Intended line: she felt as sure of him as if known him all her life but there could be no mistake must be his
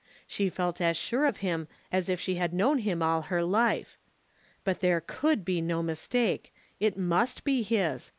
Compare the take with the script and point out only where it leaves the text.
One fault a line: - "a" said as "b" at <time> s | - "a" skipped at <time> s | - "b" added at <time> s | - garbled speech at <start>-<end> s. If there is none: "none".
- "she had" added at 2.2 s
- "it" added at 6.8 s